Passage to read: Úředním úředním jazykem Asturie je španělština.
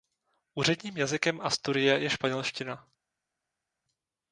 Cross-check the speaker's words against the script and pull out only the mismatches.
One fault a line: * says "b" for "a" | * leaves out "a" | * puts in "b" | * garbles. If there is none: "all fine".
* leaves out "úředním"